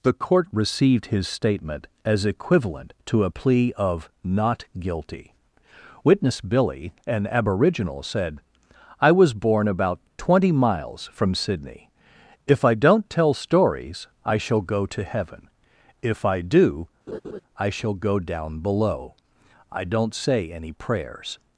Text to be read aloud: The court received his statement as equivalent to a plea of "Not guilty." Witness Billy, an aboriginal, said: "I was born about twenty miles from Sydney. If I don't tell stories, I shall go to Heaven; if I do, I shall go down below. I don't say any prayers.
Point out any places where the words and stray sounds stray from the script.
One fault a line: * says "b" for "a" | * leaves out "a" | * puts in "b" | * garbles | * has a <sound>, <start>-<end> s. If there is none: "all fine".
* has a laugh, 17.1-17.4 s